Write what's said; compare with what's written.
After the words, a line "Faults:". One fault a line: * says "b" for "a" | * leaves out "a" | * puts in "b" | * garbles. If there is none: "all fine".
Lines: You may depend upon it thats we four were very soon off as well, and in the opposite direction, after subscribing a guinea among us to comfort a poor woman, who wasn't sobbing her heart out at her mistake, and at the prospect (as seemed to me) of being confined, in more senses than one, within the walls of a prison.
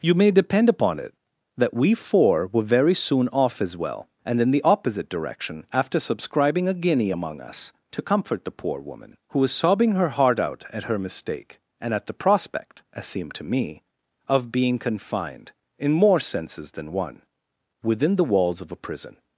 You may depend upon it that we four were very soon off as well, and in the opposite direction, after subscribing a guinea among us to comfort the poor woman, who was sobbing her heart out at her mistake, and at the prospect (as seemed to me) of being confined, in more senses than one, within the walls of a prison.
Faults:
* says "that" for "thats"
* says "the" for "a"
* says "was" for "wasn't"